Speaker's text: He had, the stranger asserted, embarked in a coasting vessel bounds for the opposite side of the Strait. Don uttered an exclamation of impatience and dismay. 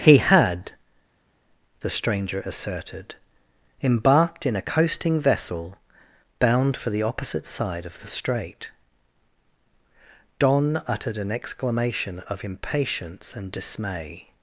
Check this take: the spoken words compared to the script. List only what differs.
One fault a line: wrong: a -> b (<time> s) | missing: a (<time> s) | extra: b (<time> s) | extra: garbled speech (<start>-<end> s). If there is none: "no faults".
wrong: bounds -> bound (6.4 s)